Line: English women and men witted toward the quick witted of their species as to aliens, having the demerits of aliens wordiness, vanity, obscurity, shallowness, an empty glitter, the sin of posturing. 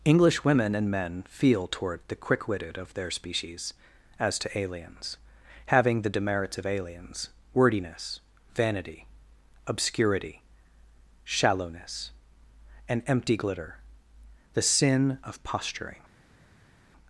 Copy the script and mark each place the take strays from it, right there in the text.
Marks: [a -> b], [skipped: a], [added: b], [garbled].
English women and men [witted -> feel] toward the quick witted of their species as to aliens, having the demerits of aliens wordiness, vanity, obscurity, shallowness, an empty glitter, the sin of posturing.